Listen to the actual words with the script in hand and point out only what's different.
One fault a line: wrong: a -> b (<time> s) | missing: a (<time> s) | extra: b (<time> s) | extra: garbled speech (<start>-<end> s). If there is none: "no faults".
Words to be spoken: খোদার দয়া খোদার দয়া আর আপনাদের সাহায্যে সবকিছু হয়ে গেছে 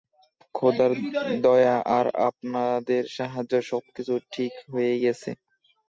missing: খোদার দয়া (1.8 s)
extra: ঠিক (4.3 s)